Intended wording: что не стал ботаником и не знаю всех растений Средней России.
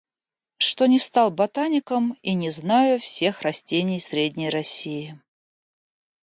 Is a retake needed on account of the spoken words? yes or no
no